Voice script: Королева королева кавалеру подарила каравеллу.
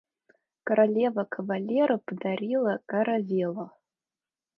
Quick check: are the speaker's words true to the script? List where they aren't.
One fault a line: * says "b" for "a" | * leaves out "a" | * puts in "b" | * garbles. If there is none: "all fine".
* leaves out "королева"